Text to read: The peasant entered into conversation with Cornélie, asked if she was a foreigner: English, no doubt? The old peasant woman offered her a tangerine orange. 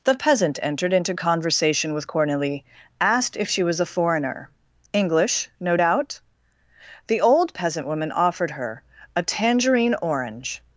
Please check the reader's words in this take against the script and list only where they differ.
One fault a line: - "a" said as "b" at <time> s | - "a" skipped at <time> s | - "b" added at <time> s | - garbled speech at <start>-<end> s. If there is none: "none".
none